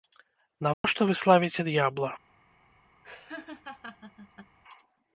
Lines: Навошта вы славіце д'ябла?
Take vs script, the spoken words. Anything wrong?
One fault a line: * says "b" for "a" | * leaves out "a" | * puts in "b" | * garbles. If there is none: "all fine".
all fine